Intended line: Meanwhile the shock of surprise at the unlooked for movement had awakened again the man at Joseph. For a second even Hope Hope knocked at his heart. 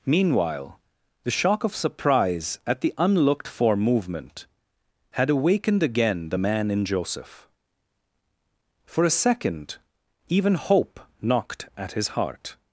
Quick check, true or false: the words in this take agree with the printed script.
false